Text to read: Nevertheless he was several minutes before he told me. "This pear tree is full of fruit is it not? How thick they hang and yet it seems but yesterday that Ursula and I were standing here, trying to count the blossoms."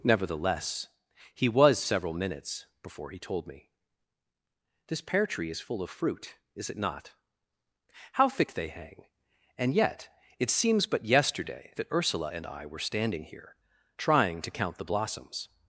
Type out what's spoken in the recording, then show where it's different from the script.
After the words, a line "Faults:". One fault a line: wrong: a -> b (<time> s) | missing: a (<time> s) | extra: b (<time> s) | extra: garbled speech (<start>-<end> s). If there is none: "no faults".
Nevertheless he was several minutes before he told me. "This pear tree is full of fruit is it not? How thick they hang and yet it seems but yesterday that Ursula and I were standing here, trying to count the blossoms."
Faults:
no faults